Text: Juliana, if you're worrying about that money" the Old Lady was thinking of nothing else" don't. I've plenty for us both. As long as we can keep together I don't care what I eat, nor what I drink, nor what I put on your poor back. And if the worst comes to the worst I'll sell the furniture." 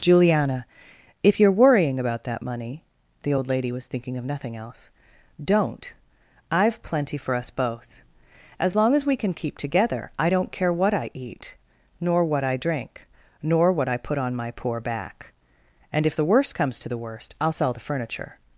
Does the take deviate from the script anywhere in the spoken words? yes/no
yes